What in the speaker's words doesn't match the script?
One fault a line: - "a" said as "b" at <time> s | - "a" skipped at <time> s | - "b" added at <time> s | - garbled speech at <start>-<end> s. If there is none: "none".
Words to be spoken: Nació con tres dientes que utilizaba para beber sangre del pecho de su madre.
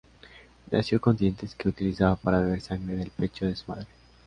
- "tres" skipped at 1.1 s